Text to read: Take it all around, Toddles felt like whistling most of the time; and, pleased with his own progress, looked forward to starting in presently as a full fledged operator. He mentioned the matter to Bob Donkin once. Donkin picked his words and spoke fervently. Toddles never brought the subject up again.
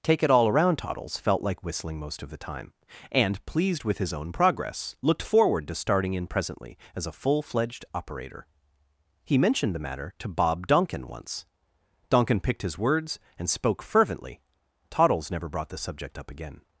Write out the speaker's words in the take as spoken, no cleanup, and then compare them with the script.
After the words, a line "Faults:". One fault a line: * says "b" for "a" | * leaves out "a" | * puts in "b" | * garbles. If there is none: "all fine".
Take it all around, Toddles felt like whistling most of the time; and, pleased with his own progress, looked forward to starting in presently as a full fledged operator. He mentioned the matter to Bob Donkin once. Donkin picked his words and spoke fervently. Toddles never brought the subject up again.
Faults:
all fine